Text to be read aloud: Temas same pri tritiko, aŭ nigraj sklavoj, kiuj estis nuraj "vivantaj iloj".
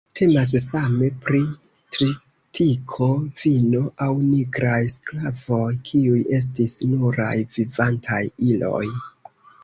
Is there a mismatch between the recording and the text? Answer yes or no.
yes